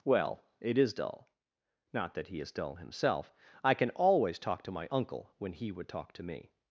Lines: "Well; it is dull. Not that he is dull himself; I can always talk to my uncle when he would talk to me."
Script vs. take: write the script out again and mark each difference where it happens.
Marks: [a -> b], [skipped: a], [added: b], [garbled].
"Well; it is dull. Not that he is dull himself; I can always talk to my uncle when he would talk to me."